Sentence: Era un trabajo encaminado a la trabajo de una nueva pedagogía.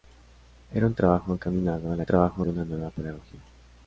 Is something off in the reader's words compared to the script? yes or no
no